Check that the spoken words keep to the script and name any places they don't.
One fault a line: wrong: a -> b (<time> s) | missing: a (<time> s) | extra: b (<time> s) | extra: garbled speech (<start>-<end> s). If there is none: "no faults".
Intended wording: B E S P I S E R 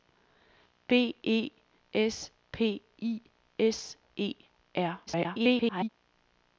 extra: garbled speech (5.1-5.9 s)